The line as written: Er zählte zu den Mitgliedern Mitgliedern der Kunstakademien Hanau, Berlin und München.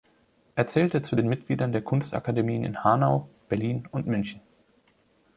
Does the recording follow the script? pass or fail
fail